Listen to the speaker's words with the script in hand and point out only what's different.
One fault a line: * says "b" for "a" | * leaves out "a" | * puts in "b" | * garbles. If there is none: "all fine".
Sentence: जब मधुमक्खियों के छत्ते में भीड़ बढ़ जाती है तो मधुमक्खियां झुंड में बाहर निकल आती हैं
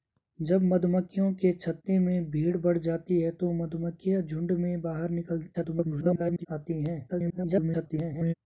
* garbles
* garbles